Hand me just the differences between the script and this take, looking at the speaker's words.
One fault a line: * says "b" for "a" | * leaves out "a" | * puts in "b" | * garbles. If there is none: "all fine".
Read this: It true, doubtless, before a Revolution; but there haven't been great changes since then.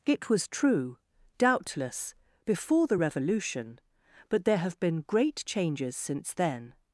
* puts in "was"
* says "the" for "a"
* says "have" for "haven't"